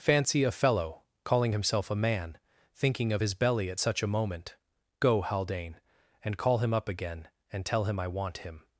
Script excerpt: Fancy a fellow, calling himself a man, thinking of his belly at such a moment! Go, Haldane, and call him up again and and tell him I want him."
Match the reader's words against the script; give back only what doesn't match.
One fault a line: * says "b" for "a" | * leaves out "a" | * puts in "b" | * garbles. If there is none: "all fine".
* leaves out "and"